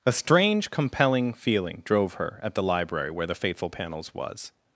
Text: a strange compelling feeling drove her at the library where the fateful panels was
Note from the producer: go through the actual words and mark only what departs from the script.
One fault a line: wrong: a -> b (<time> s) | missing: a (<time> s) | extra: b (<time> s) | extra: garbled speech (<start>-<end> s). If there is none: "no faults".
no faults